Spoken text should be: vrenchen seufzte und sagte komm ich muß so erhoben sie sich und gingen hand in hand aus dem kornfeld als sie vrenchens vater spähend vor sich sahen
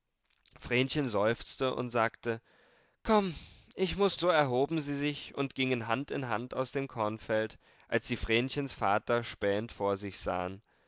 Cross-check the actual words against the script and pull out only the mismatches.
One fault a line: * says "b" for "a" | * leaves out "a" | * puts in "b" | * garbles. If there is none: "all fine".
all fine